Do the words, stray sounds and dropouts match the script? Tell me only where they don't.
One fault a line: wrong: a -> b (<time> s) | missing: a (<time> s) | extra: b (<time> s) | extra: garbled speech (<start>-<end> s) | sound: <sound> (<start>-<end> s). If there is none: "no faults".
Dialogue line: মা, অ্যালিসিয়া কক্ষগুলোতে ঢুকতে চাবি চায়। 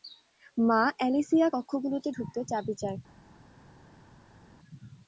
no faults